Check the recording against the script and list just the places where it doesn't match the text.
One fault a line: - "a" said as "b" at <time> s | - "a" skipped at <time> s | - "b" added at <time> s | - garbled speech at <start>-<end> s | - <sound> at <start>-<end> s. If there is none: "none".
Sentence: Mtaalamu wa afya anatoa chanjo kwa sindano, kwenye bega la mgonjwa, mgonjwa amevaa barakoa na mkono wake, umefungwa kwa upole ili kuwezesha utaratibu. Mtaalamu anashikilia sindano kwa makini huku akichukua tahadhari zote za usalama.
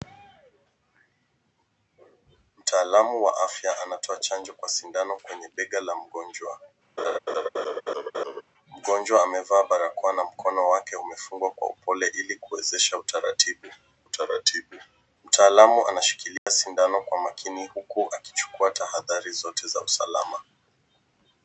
- laugh at 7.0-8.4 s
- "utaratibu" added at 14.0 s
- dropout at 16.4-16.5 s